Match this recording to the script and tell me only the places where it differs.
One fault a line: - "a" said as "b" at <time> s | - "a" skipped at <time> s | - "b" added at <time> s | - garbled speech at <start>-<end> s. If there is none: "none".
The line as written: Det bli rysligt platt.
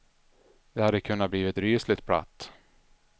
- "hade kunnat" added at 0.8 s